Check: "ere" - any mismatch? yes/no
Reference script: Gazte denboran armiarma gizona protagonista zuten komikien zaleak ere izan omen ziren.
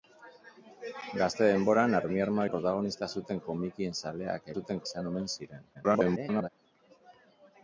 yes